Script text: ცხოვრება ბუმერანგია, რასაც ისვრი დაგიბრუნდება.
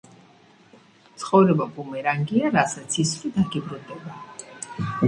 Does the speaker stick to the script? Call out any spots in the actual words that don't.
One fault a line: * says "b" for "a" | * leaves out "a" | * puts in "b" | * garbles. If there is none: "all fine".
all fine